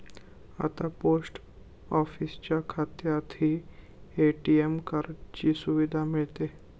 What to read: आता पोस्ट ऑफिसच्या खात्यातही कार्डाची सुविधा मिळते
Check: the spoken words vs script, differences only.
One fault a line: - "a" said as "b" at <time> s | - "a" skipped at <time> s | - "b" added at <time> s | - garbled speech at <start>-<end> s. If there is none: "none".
- "ए.टी.एम" added at 4.2 s